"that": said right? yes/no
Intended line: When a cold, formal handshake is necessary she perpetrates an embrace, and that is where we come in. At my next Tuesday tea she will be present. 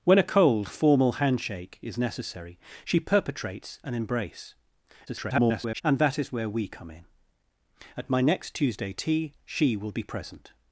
yes